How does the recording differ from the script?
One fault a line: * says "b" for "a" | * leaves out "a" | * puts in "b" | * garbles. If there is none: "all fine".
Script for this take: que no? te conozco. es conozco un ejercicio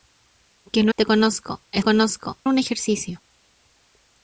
all fine